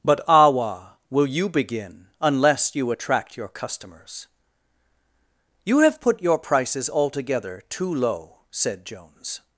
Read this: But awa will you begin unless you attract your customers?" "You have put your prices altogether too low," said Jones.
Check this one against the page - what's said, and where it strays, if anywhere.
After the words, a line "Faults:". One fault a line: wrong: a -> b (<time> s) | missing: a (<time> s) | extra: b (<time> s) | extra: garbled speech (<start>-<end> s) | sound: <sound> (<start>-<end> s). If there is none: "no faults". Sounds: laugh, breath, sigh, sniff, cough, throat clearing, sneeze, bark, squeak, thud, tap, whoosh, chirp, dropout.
But awa will you begin unless you attract your customers?" "You have put your prices altogether too low," said Jones.
Faults:
no faults